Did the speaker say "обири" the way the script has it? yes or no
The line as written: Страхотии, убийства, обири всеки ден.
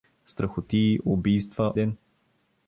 no